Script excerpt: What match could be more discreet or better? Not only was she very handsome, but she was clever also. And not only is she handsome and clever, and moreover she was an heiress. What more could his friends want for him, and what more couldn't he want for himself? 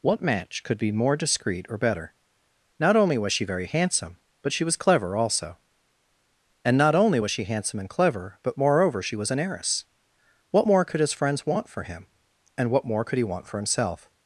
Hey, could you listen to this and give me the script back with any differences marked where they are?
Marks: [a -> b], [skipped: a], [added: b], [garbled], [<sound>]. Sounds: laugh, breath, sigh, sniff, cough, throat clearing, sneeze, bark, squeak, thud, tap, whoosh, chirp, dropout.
What match could be more discreet or better? Not only was she very handsome, but she was clever also. And not only [is -> was] she handsome and clever, [and -> but] moreover she was an heiress. What more could his friends want for him, and what more [couldn't -> could] he want for himself?